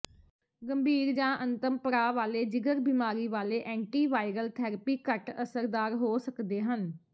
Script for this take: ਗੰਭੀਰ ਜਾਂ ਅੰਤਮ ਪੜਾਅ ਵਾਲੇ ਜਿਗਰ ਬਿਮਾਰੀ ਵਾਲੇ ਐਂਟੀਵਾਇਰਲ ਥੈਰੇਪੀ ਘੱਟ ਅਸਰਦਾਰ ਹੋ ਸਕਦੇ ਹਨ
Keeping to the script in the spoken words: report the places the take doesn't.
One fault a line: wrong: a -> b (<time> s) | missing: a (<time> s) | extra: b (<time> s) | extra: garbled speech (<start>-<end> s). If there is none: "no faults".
no faults